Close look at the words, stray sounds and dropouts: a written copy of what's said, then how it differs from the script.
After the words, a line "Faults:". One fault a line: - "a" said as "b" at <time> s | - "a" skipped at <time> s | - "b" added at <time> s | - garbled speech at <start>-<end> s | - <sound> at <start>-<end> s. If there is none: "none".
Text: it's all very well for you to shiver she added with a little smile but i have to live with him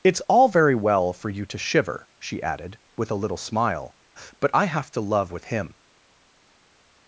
it's all very well for you to shiver she added with a little smile but i have to love with him
Faults:
- "live" said as "love" at 5.0 s